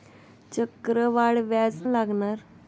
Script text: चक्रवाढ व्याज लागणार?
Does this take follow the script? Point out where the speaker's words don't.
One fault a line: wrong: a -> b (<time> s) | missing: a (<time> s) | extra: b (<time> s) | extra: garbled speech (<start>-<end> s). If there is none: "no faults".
no faults